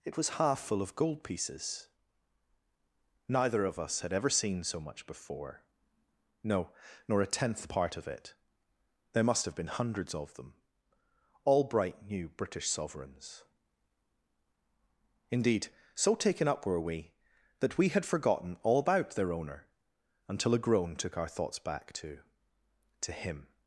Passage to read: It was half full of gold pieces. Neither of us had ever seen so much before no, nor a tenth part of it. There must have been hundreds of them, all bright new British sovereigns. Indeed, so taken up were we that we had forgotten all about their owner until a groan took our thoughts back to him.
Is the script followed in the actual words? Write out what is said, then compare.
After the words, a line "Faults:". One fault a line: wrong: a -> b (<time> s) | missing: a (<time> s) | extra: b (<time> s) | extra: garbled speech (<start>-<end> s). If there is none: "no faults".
It was half full of gold pieces. Neither of us had ever seen so much before no, nor a tenth part of it. There must have been hundreds of them, all bright new British sovereigns. Indeed, so taken up were we that we had forgotten all about their owner until a groan took our thoughts back to to him.
Faults:
extra: to (23.0 s)